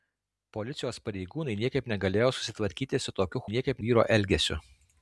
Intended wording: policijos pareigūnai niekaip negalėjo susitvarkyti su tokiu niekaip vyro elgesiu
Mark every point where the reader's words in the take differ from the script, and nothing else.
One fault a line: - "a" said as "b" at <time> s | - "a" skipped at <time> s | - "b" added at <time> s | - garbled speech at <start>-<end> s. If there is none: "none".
none